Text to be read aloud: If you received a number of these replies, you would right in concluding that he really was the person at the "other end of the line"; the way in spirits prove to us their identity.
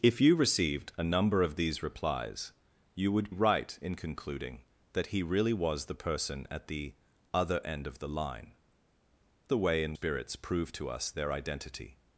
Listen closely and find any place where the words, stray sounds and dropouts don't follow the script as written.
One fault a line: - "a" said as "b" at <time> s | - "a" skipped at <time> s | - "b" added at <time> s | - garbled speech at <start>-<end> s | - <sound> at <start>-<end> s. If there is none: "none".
none